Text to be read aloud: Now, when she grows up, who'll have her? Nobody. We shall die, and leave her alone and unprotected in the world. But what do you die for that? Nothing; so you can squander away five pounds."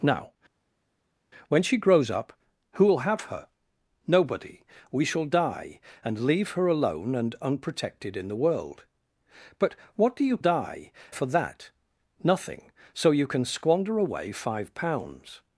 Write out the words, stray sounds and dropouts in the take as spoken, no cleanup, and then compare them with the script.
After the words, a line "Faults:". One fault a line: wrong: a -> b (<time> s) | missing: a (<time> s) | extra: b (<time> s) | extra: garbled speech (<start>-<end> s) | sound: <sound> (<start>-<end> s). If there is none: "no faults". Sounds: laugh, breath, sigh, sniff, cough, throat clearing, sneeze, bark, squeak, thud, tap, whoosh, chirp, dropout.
Now, when she grows up, who'll have her? Nobody. We shall die, and leave her alone and unprotected in the world. But what do you die for that? Nothing; so you can squander away five pounds."
Faults:
no faults